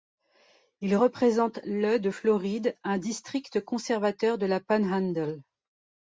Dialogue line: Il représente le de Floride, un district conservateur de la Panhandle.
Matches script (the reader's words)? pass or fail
pass